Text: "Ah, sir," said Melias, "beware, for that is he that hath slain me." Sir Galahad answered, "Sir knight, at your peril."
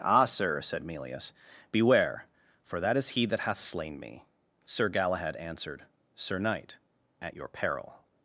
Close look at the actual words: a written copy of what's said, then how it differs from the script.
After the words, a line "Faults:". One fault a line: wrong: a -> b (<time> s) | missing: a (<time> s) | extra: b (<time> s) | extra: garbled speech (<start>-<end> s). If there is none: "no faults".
"Ah, sir," said Melias, "beware, for that is he that hath slain me." Sir Galahad answered, "Sir knight, at your peril."
Faults:
no faults